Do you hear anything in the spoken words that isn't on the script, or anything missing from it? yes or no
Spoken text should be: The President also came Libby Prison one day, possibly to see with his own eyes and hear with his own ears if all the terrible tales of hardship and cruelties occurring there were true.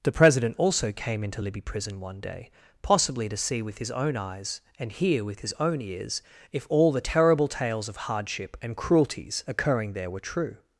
yes